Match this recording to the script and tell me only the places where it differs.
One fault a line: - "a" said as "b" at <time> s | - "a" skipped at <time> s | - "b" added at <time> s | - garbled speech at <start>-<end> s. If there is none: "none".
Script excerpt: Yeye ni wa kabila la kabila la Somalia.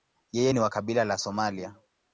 - "kabila la" skipped at 1.2 s